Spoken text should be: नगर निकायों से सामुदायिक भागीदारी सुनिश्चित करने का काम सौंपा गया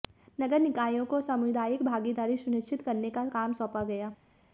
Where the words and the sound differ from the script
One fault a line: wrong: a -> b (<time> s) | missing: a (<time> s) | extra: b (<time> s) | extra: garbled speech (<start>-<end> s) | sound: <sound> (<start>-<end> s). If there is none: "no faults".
wrong: से -> को (1.1 s)